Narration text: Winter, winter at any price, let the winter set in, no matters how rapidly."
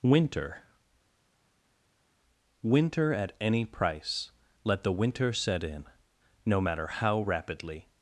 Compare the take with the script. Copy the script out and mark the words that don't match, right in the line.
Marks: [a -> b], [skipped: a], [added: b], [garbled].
Winter, winter at any price, let the winter set in, no [matters -> matter] how rapidly."